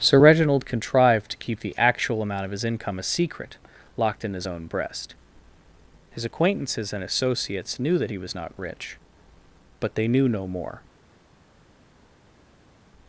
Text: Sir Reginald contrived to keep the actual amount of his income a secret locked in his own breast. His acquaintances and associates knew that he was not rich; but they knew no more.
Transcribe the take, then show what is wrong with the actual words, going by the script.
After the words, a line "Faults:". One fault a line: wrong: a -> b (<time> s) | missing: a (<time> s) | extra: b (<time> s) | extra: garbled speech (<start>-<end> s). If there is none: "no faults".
Sir Reginald contrived to keep the actual amount of his income a secret locked in his own breast. His acquaintances and associates knew that he was not rich; but they knew no more.
Faults:
no faults